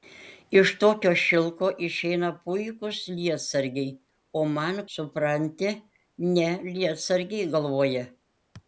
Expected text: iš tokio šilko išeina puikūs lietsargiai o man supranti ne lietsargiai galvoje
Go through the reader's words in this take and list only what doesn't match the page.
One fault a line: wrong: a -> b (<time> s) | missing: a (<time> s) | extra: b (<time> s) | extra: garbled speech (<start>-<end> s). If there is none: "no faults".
no faults